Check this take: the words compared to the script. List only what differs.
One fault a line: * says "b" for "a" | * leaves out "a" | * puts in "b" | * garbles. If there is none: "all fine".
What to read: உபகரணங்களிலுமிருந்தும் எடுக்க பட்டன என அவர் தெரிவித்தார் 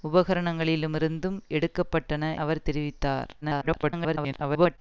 * leaves out "என"
* garbles